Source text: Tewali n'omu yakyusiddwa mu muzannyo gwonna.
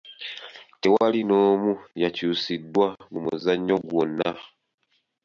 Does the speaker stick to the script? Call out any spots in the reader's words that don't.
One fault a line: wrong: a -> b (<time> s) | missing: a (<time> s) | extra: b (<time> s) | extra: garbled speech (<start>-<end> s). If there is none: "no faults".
no faults